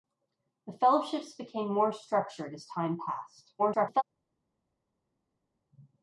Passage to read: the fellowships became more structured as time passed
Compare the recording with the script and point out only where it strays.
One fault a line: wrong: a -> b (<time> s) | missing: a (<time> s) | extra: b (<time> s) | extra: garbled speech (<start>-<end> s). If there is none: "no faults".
extra: garbled speech (3.6-4.0 s)